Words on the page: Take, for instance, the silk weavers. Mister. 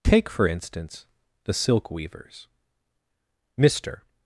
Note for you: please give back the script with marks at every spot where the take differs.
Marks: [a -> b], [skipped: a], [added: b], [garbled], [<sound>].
Take, for instance, the silk weavers. Mister.